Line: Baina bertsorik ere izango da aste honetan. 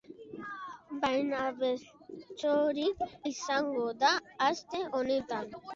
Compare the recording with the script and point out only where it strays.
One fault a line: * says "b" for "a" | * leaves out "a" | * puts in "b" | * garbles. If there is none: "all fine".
* leaves out "ere"